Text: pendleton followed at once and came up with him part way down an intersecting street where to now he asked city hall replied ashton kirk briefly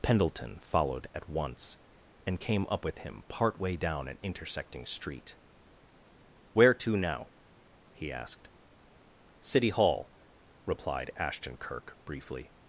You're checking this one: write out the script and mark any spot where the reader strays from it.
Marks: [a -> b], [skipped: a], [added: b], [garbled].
pendleton followed at once and came up with him part way down an intersecting street where to now he asked city hall replied ashton kirk briefly